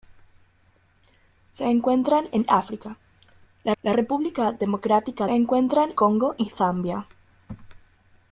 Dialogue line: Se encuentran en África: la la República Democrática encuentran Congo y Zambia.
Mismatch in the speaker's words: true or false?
false